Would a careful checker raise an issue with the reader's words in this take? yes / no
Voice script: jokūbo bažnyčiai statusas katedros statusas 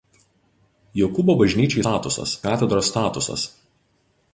no